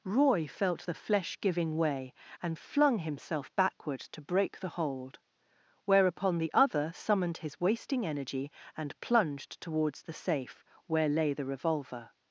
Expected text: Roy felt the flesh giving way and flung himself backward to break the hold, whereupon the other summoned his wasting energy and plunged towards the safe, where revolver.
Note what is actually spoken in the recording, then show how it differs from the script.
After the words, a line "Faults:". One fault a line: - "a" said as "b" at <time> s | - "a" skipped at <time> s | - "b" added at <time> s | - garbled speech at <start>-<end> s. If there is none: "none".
Roy felt the flesh giving way and flung himself backward to break the hold, whereupon the other summoned his wasting energy and plunged towards the safe, where lay the revolver.
Faults:
- "lay the" added at 11.1 s